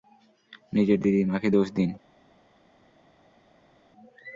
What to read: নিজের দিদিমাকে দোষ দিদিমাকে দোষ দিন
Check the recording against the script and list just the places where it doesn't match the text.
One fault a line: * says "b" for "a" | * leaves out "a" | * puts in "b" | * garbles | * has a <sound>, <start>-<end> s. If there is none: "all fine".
* leaves out "দিদিমাকে দোষ"